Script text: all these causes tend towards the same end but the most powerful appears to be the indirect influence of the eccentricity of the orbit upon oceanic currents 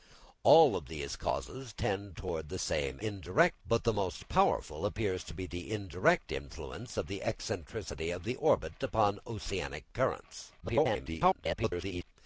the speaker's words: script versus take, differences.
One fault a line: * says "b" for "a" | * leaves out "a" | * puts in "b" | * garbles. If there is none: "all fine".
* says "indirect" for "end"
* garbles